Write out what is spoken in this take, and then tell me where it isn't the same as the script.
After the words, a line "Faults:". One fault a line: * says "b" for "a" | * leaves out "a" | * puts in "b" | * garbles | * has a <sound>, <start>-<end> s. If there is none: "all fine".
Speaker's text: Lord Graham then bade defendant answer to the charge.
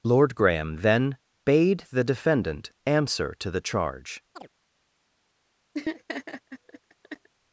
Lord Graham then bade the defendant answer to the charge.
Faults:
* puts in "the"
* has a chirp, 4.4-4.5 s
* has a laugh, 5.7-7.3 s